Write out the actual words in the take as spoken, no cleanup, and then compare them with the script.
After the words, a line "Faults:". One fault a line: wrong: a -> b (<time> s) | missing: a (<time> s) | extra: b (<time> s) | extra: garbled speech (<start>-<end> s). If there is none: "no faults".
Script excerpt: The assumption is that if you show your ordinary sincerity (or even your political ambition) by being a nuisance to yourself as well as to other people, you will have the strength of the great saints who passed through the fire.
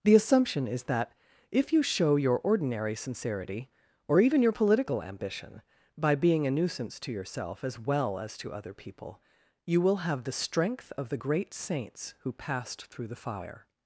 The assumption is that if you show your ordinary sincerity (or even your political ambition) by being a nuisance to yourself as well as to other people, you will have the strength of the great saints who passed through the fire.
Faults:
no faults